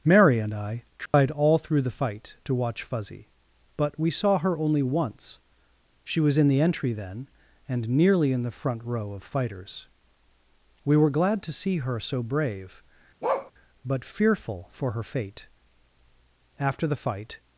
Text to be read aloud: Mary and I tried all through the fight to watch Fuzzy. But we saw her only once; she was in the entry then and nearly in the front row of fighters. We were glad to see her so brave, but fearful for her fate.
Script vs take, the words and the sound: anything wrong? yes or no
yes